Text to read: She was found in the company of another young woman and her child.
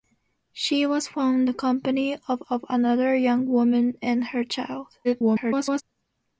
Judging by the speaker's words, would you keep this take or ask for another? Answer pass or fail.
fail